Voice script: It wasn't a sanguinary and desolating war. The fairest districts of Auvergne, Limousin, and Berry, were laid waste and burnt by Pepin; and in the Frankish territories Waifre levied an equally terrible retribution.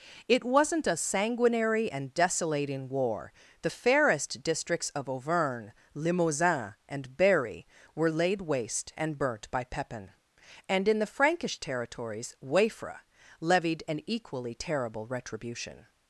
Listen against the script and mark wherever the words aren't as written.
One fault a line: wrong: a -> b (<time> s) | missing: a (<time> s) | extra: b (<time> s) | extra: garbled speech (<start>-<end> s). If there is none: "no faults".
no faults